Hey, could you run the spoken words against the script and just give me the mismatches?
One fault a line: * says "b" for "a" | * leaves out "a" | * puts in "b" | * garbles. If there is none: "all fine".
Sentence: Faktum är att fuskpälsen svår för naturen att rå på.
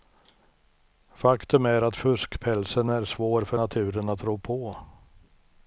* puts in "är"